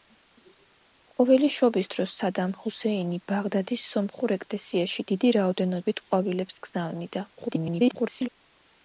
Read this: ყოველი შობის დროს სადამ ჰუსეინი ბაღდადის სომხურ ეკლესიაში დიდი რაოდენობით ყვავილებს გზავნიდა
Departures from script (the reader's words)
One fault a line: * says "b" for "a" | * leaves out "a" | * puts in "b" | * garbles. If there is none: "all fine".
* garbles